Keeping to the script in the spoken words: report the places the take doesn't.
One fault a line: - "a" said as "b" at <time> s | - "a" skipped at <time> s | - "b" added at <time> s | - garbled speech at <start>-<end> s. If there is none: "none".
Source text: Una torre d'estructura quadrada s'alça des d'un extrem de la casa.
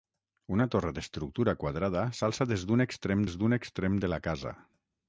- "des d'un extrem" added at 3.3 s